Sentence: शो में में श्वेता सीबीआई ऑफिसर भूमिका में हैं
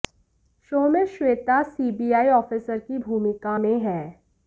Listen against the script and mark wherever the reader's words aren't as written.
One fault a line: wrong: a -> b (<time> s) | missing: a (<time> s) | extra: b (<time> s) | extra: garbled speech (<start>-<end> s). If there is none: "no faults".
missing: में (1.1 s)
extra: की (2.8 s)